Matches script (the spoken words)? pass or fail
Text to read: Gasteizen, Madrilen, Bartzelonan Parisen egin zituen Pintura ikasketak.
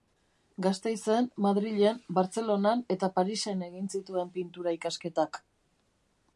fail